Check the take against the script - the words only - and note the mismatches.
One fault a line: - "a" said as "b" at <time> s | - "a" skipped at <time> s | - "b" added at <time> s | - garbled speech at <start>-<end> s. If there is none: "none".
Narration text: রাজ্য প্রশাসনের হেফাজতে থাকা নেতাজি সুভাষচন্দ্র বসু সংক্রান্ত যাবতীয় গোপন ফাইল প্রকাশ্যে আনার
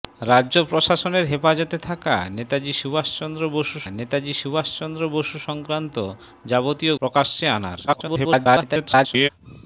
- "নেতাজি সুভাষচন্দ্র বসু" added at 3.9 s
- "গোপন ফাইল" skipped at 6.9 s
- garbled speech at 7.9-9.3 s